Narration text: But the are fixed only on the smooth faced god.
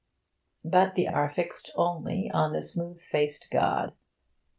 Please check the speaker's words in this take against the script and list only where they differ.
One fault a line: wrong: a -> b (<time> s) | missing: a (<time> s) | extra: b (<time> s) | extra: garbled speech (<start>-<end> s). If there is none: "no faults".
no faults